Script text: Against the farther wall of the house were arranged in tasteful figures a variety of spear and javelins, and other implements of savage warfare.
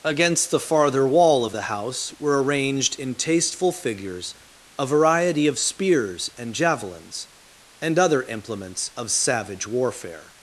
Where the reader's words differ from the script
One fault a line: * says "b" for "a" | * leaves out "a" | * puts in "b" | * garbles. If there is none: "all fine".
* says "spears" for "spear"